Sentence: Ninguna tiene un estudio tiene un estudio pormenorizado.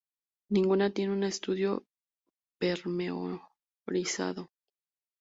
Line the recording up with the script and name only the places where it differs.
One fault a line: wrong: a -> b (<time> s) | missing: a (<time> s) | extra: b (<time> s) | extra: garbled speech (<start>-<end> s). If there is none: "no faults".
missing: tiene un estudio (1.9 s)